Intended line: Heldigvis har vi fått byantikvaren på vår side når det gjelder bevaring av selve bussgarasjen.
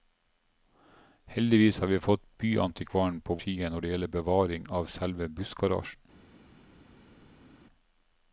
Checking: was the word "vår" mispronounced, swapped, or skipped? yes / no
yes